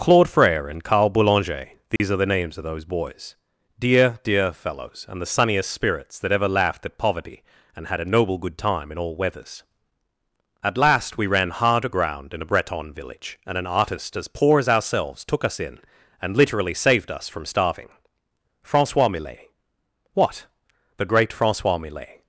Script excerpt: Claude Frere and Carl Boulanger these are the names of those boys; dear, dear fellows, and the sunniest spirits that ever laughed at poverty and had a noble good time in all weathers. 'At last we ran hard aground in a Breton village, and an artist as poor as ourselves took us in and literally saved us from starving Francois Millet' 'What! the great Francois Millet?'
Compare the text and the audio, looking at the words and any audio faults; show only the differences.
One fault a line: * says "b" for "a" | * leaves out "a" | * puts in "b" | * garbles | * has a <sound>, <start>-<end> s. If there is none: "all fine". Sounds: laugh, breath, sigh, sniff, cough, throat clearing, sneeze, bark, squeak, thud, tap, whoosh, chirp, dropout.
* has a dropout, 2.0-2.0 s